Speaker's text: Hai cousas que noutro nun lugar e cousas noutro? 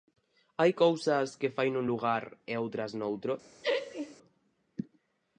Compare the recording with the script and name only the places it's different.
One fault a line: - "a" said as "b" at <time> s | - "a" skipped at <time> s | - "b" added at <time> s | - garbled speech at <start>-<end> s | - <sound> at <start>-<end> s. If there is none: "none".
- "noutro" said as "fai" at 1.6 s
- "cousas" said as "outras" at 2.6 s
- laugh at 3.6-4.2 s